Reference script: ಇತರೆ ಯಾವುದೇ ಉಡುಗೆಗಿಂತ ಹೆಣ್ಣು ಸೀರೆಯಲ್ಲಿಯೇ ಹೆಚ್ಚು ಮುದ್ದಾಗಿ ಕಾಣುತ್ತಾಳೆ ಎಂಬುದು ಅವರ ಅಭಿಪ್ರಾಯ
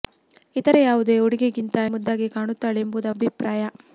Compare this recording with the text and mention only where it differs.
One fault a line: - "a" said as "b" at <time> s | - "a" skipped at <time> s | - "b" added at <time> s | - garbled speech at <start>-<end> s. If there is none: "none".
- "ಹೆಣ್ಣು ಸೀರೆಯಲ್ಲಿಯೇ ಹೆಚ್ಚು" skipped at 1.8 s
- "ಅವರ" skipped at 3.1 s